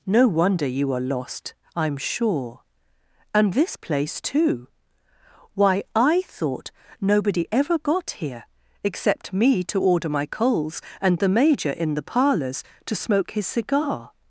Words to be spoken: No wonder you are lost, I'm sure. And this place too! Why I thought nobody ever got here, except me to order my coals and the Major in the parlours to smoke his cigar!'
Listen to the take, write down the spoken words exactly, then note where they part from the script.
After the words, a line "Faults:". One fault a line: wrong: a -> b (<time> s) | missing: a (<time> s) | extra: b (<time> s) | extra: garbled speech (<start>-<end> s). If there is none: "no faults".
No wonder you are lost, I'm sure. And this place too! Why I thought nobody ever got here, except me to order my coals and the Major in the parlours to smoke his cigar!'
Faults:
no faults